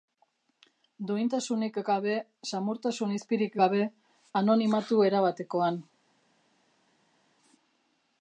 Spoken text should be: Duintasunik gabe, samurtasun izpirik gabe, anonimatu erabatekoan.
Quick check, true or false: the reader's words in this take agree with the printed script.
true